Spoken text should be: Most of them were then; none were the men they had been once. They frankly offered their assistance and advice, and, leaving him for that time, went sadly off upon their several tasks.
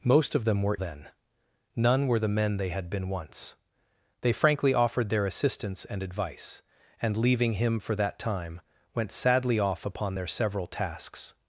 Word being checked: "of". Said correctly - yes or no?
yes